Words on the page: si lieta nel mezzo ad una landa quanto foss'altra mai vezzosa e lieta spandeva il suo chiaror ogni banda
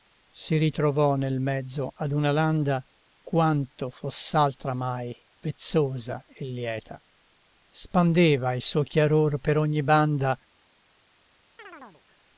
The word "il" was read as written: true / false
true